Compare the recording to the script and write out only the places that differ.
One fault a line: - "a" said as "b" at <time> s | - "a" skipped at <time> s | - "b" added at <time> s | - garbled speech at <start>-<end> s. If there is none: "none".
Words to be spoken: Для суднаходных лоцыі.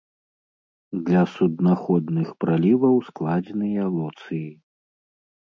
- "праліваў складзеныя" added at 2.5 s